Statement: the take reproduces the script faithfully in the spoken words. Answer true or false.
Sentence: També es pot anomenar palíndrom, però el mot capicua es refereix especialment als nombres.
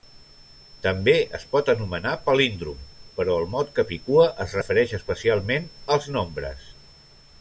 true